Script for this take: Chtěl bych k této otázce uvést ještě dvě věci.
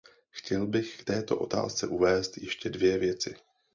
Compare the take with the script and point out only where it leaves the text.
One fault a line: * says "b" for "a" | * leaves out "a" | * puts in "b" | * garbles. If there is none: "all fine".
all fine